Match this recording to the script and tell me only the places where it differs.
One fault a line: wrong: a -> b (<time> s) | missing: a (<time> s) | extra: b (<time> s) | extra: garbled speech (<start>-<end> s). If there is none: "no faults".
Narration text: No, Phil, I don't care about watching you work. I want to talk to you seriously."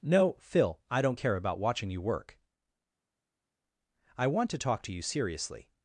no faults